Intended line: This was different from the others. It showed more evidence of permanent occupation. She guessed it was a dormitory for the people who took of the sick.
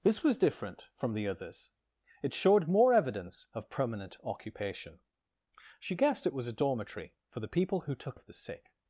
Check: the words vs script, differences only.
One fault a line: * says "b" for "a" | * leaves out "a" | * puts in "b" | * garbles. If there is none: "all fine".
all fine